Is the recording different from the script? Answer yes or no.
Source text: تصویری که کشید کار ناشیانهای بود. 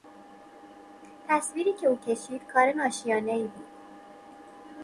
yes